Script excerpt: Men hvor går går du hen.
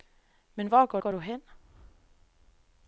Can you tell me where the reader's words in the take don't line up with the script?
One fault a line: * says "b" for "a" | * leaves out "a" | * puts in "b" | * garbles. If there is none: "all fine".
all fine